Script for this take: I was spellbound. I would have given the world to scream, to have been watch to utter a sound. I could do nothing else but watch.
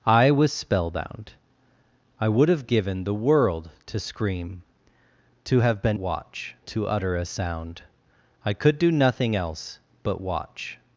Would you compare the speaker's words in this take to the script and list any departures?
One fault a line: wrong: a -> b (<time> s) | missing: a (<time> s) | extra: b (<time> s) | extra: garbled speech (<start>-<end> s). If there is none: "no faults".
no faults